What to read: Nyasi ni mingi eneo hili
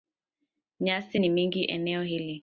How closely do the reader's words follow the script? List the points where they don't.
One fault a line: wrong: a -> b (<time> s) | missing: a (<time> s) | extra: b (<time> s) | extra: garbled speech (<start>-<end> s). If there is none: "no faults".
no faults